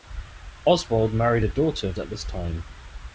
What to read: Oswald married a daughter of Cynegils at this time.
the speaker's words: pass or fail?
fail